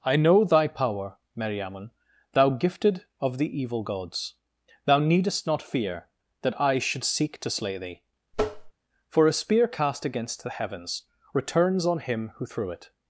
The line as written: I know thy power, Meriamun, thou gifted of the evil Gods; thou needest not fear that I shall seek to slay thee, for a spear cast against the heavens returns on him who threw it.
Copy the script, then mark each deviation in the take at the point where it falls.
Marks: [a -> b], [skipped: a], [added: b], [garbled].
I know thy power, Meriamun, thou gifted of the evil Gods; thou needest not fear that I [shall -> should] seek to slay thee, for a spear cast against the heavens returns on him who threw it.